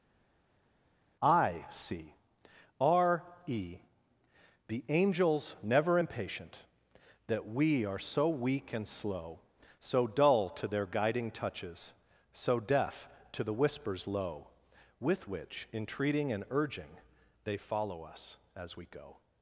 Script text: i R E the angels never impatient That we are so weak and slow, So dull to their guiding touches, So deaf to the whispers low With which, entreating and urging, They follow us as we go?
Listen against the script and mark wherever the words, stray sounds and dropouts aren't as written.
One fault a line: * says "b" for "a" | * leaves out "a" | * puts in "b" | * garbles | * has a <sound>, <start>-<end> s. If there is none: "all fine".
* puts in "see"